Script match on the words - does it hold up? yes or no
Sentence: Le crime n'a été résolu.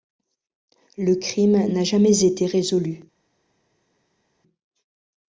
no